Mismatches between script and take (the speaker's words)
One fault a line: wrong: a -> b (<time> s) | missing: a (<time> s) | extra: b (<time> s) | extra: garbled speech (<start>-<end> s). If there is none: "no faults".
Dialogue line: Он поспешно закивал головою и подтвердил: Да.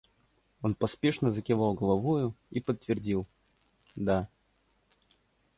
no faults